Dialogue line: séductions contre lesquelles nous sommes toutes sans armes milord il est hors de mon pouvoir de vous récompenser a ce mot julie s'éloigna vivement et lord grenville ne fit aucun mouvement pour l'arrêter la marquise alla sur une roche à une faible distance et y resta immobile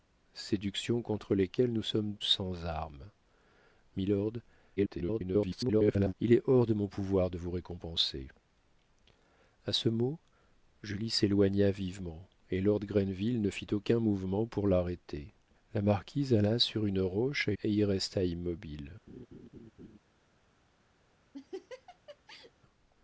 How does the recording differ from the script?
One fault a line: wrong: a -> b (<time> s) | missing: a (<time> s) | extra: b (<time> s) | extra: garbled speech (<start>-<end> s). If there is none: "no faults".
missing: toutes (2.1 s)
extra: garbled speech (4.8-6.1 s)
missing: une faible distance (17.5 s)